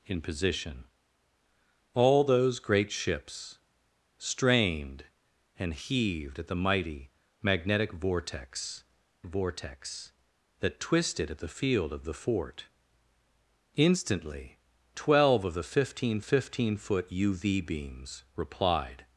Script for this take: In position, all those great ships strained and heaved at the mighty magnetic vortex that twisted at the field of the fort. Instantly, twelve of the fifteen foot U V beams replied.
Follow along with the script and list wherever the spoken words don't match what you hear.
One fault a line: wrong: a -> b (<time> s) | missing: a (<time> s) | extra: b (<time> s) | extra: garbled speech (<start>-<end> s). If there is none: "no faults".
extra: vortex (9.2 s)
extra: fifteen (16.2 s)